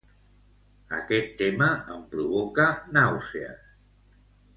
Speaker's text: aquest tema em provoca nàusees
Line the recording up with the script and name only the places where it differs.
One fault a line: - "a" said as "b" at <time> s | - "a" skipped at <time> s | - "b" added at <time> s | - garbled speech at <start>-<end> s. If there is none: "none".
none